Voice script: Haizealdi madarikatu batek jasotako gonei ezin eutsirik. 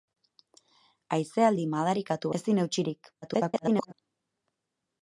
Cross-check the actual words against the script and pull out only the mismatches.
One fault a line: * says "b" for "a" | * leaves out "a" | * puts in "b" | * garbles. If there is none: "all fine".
* leaves out "batek jasotako gonei"
* garbles